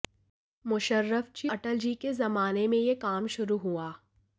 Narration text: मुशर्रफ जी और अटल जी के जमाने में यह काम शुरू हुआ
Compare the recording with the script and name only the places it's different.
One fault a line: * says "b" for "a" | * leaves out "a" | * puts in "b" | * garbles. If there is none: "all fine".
* leaves out "और"